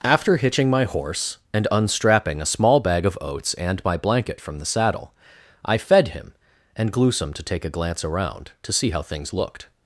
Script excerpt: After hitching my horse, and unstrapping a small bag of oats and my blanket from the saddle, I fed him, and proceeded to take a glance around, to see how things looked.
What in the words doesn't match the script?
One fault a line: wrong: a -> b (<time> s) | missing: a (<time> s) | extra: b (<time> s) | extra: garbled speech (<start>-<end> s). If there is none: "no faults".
wrong: proceeded -> gluesome (6.9 s)